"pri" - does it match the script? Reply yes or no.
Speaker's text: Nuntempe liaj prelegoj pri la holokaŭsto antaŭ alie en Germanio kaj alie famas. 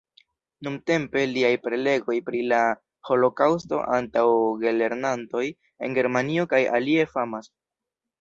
yes